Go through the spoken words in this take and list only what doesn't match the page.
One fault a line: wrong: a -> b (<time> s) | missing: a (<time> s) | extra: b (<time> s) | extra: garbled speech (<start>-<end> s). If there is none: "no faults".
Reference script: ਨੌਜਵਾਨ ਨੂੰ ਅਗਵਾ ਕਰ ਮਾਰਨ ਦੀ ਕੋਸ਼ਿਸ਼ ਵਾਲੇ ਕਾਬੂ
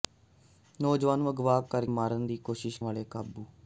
no faults